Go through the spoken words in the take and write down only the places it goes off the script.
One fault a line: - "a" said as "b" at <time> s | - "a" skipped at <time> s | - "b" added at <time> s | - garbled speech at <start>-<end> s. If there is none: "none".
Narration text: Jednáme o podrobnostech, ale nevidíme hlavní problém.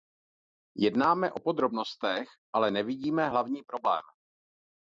none